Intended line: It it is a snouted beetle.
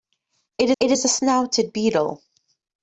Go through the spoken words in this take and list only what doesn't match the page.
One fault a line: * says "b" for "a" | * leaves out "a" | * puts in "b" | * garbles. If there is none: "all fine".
all fine